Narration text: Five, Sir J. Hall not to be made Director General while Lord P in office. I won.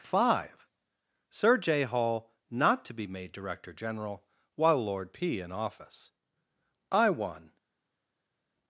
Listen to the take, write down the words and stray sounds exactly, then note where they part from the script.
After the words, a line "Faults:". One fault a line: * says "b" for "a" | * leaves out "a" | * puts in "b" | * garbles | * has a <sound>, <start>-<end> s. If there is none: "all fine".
Five, Sir J. Hall not to be made Director General while Lord P in office. I won.
Faults:
all fine